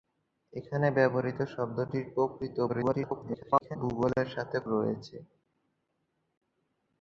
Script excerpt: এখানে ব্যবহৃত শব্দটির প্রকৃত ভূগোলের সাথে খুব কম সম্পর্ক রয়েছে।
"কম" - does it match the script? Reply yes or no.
no